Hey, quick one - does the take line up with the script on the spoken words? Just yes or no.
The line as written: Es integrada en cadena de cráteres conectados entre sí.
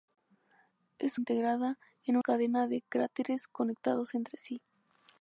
yes